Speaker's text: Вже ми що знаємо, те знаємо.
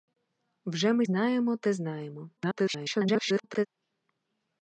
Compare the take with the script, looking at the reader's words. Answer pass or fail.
fail